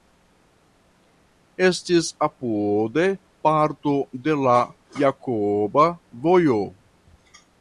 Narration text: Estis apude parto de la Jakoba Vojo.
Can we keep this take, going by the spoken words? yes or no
yes